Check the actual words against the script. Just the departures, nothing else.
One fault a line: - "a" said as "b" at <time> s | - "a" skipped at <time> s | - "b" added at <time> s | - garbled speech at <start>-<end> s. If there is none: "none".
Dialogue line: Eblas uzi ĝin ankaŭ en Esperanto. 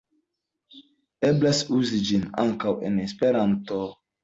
none